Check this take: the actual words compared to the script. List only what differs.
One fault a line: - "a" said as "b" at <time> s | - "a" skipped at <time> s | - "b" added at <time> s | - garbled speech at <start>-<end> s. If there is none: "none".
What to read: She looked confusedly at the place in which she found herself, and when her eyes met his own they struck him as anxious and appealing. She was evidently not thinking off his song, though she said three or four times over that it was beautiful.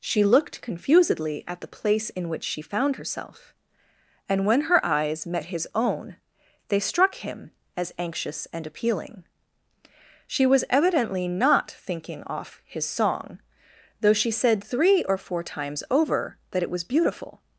none